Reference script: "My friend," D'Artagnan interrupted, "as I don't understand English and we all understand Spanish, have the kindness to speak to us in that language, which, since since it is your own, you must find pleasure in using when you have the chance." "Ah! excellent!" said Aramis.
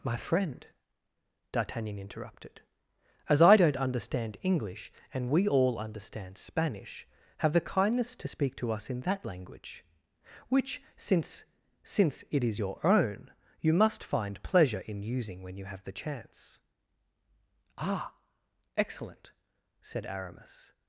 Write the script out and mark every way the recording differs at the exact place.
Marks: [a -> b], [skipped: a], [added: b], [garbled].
"My friend," D'Artagnan interrupted, "as I don't understand English and we all understand Spanish, have the kindness to speak to us in that language, which, since since it is your own, you must find pleasure in using when you have the chance." "Ah! excellent!" said Aramis.